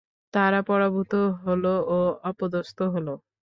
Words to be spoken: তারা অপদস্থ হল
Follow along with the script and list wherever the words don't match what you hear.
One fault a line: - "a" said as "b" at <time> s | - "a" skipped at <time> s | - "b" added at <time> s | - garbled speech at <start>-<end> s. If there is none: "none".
- "পরাভূত হল ও" added at 0.7 s